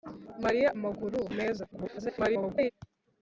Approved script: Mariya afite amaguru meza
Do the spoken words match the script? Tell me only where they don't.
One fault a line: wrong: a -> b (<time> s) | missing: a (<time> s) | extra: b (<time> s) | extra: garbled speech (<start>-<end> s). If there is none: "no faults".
missing: afite (0.7 s)
extra: garbled speech (1.7-2.7 s)